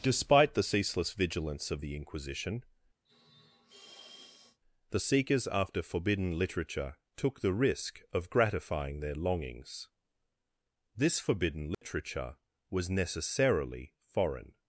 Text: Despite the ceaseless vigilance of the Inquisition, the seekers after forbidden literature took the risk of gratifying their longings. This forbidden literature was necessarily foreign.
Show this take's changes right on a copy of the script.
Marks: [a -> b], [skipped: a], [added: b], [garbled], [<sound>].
Despite the ceaseless vigilance of the Inquisition, [sniff] the seekers after forbidden literature took the risk of gratifying their longings. This forbidden literature [dropout] was necessarily foreign.